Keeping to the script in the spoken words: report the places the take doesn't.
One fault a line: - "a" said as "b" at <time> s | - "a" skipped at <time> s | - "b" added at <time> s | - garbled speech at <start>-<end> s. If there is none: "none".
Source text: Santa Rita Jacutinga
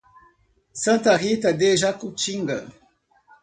- "de" added at 1.5 s